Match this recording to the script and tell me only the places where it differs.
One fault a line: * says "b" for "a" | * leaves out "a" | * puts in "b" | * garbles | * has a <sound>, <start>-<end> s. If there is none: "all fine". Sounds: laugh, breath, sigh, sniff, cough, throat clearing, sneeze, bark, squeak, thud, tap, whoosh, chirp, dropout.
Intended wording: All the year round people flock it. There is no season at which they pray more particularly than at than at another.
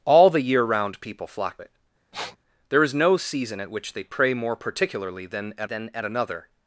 * has a sniff, 2.1-2.4 s